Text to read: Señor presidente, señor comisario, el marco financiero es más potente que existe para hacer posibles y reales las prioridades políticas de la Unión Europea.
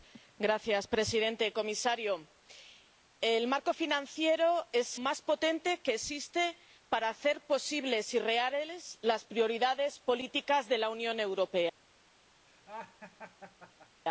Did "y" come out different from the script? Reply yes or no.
no